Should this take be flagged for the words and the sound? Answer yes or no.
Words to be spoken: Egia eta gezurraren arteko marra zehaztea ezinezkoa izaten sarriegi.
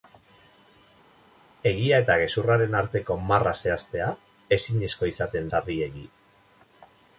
no